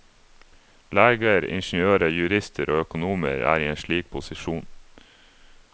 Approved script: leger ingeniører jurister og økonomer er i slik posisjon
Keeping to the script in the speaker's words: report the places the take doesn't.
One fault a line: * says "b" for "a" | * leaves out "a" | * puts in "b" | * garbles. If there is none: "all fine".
* puts in "en"